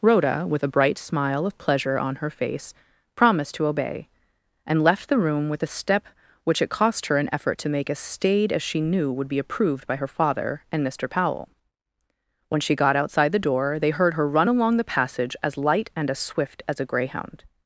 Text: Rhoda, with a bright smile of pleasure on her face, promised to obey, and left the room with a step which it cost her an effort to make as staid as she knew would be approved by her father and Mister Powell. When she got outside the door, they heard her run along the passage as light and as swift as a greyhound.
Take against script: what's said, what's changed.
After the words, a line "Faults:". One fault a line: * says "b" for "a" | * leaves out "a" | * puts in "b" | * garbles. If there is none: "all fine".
Rhoda, with a bright smile of pleasure on her face, promised to obey, and left the room with a step which it cost her an effort to make as staid as she knew would be approved by her father and Mister Powell. When she got outside the door, they heard her run along the passage as light and as swift as a greyhound.
Faults:
all fine